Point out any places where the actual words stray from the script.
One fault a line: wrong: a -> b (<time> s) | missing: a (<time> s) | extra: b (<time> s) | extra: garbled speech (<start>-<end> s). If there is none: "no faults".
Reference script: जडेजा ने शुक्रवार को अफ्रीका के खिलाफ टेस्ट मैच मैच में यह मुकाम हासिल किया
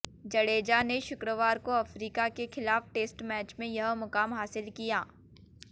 missing: मैच (3.5 s)